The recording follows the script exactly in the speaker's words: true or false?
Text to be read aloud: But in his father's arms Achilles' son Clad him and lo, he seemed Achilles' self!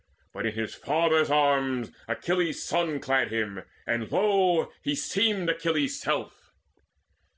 true